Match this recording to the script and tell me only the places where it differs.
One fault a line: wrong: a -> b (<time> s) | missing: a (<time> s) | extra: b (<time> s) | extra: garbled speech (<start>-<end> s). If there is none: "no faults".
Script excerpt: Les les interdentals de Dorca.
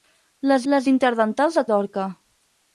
no faults